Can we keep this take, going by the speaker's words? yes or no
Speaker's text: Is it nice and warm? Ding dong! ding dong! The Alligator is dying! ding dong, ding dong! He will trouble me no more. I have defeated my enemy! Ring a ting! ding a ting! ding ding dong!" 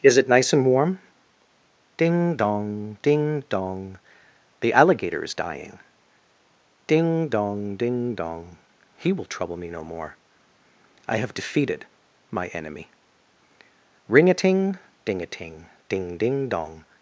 yes